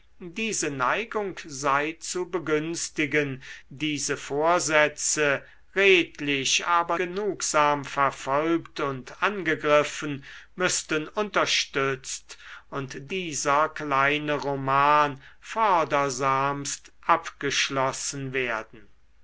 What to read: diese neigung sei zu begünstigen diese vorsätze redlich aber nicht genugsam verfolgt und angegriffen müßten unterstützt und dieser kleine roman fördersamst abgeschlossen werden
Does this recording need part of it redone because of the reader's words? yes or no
yes